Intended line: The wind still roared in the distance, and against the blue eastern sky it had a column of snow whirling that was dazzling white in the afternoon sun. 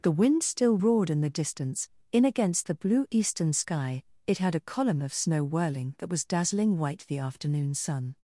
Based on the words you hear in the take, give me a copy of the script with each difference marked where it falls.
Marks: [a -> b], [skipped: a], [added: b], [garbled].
The wind still roared in the distance, [and -> in] against the blue eastern sky it had a column of snow whirling that was dazzling white [skipped: in] the afternoon sun.